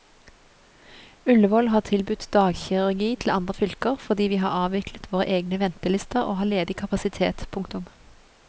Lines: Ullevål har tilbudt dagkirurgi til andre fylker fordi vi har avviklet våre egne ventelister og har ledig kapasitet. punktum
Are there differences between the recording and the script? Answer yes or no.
no